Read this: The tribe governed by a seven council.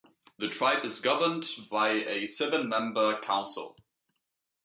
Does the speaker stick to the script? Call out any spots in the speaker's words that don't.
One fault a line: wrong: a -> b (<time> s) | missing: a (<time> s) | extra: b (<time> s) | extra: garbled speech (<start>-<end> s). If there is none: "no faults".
extra: is (0.8 s)
extra: member (2.7 s)